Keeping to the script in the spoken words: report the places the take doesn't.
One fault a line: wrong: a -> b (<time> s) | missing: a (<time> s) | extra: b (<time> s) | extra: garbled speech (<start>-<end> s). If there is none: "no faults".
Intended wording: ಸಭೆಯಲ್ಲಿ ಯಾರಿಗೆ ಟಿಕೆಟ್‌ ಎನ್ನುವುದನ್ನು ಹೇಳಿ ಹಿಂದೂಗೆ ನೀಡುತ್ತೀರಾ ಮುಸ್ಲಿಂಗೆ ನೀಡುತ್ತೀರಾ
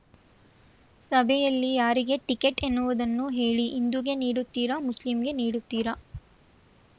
no faults